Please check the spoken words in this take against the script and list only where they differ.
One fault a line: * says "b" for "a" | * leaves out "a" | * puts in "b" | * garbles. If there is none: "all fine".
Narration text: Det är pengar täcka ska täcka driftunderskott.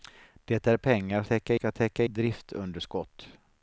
all fine